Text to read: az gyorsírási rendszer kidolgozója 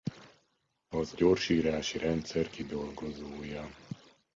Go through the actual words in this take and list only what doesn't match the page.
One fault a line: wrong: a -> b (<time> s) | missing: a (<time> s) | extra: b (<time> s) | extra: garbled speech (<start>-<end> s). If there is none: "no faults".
no faults